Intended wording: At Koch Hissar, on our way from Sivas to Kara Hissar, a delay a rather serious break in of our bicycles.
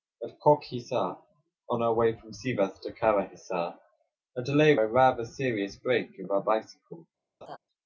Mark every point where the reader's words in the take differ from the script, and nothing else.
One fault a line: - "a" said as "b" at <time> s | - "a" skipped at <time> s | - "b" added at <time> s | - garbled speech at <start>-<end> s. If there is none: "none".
none